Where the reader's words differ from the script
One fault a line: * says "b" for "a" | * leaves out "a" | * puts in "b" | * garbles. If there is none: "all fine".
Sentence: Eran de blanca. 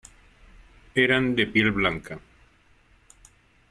* puts in "piel"